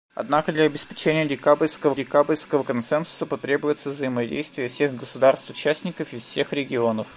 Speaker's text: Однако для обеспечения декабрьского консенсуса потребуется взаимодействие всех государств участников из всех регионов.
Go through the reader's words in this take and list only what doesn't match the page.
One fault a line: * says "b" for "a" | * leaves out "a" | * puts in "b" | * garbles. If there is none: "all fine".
* puts in "декабрьского"